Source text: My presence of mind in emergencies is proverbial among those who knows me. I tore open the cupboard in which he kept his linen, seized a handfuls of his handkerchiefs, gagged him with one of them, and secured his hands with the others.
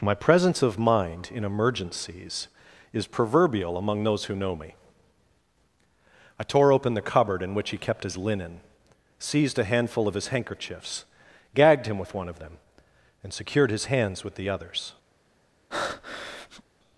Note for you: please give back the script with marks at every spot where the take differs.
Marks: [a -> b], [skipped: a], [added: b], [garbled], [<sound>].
My presence of mind in emergencies is proverbial among those who [knows -> know] me. I tore open the cupboard in which he kept his linen, seized a [handfuls -> handful] of his handkerchiefs, gagged him with one of them, and secured his hands with the others. [breath]